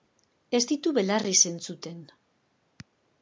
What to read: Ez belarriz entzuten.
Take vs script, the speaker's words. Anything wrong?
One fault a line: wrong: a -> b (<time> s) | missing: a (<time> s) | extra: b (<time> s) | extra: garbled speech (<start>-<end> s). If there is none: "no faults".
extra: ditu (0.7 s)